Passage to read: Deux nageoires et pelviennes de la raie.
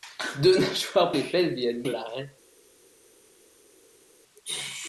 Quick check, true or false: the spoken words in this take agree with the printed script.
true